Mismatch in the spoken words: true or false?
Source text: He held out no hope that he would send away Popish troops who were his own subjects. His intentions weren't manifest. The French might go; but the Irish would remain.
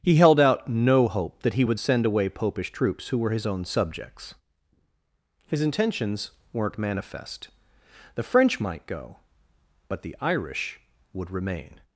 false